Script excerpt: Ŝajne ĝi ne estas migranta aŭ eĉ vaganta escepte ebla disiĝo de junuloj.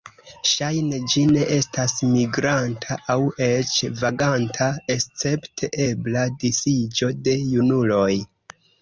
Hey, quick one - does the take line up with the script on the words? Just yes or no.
yes